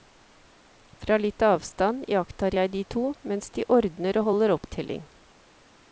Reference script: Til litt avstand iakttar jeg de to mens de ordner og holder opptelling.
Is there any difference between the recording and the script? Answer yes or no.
yes